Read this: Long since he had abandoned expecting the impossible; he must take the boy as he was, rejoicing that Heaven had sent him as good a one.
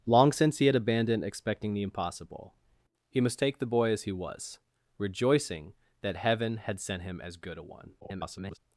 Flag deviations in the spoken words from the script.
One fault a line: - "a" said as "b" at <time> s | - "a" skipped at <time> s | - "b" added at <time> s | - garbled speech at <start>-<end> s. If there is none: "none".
- garbled speech at 8.0-8.6 s